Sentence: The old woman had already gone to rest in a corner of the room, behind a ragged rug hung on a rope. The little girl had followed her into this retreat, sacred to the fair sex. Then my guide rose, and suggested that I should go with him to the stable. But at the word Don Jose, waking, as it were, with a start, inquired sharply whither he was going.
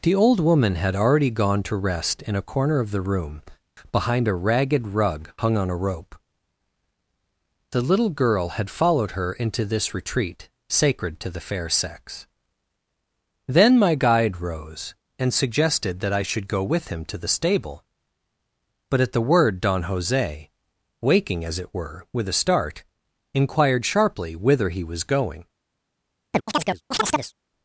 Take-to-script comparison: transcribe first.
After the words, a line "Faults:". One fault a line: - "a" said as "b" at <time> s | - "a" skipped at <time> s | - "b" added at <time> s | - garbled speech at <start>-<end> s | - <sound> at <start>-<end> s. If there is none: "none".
The old woman had already gone to rest in a corner of the room, behind a ragged rug hung on a rope. The little girl had followed her into this retreat, sacred to the fair sex. Then my guide rose, and suggested that I should go with him to the stable. But at the word Don Jose, waking, as it were, with a start, inquired sharply whither he was going.
Faults:
- chirp at 26.3-27.3 s